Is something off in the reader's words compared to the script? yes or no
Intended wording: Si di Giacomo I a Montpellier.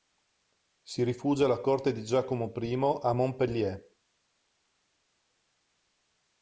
yes